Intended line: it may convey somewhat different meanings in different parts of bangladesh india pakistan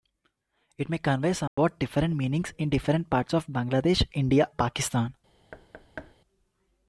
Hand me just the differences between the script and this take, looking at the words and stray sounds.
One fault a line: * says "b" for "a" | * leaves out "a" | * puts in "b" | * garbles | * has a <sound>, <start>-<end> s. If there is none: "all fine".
* has a dropout, 1.5-1.6 s
* has a thud, 5.5-6.1 s